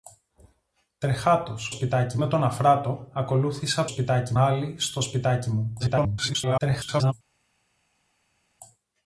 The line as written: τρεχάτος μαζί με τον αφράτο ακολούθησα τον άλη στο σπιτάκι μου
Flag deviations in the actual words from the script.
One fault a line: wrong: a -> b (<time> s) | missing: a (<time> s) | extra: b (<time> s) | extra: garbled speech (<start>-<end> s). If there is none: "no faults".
wrong: μαζί -> σπιτάκι (1.7 s)
wrong: τον -> σπιτάκι (3.8 s)
extra: garbled speech (5.8-7.1 s)